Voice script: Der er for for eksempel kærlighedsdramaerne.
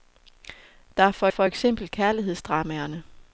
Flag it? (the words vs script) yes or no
no